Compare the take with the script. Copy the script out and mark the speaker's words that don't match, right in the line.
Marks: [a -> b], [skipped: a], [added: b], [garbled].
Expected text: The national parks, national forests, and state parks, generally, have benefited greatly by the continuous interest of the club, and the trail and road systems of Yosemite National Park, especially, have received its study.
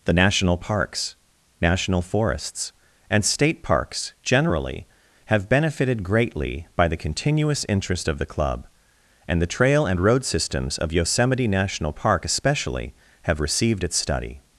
The national parks, national forests, and state parks, generally, have benefited greatly by the continuous interest of the club, and the trail and road systems of Yosemite National Park, especially, have received its study.